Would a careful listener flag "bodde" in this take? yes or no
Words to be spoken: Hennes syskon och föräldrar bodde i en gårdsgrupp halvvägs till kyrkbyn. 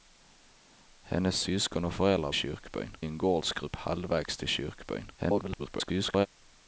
yes